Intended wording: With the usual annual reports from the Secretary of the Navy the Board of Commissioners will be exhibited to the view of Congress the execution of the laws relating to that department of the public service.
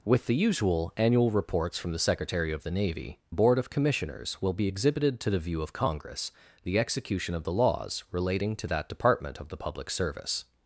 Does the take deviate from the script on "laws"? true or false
false